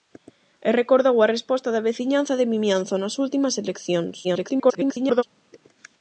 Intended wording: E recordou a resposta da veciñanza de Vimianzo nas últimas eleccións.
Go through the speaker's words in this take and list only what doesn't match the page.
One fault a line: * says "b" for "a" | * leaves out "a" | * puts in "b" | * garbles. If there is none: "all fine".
* garbles